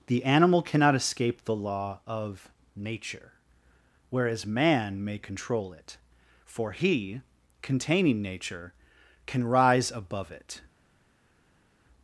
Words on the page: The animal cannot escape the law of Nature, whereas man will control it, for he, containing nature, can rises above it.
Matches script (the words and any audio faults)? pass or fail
fail